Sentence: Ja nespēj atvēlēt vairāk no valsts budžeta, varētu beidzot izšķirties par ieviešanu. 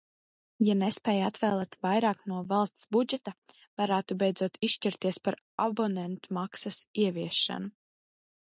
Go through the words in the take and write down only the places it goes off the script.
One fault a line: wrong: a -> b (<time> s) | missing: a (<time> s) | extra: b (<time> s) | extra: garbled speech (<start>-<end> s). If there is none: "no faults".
extra: abonentmaksas (5.6 s)